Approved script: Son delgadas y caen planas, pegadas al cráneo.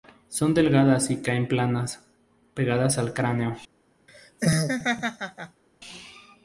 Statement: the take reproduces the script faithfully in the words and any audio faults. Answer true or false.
false